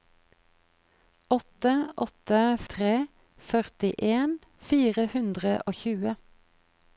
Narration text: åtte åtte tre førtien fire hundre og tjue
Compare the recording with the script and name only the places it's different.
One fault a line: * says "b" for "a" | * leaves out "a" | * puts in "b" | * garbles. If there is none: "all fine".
all fine